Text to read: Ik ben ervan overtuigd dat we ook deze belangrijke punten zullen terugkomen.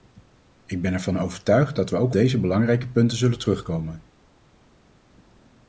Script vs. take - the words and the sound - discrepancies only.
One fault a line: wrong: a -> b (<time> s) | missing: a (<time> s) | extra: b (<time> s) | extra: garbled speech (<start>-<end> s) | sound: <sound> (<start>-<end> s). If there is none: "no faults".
no faults